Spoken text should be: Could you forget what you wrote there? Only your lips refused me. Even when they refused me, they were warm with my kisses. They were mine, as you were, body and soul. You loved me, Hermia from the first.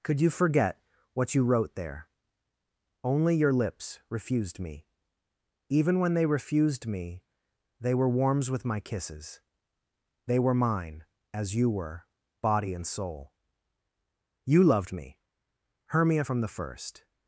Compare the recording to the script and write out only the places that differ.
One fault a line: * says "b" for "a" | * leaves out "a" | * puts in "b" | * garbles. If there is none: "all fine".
* says "warms" for "warm"